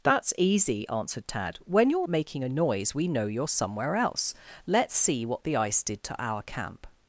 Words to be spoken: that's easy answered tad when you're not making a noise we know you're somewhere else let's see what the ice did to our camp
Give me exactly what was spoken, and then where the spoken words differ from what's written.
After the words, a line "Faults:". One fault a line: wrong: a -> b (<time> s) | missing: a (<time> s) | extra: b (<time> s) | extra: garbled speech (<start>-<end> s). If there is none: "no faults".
that's easy answered tad when you're making a noise we know you're somewhere else let's see what the ice did to our camp
Faults:
missing: not (2.1 s)